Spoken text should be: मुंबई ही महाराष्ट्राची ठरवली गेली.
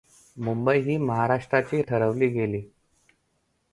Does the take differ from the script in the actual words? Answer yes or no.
no